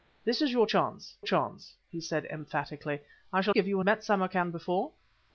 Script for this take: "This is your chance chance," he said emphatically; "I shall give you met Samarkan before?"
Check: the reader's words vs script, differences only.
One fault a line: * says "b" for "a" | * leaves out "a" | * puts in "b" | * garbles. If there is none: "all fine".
all fine